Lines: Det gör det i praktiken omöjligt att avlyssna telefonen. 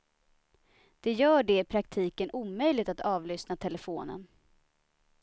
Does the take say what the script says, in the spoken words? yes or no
yes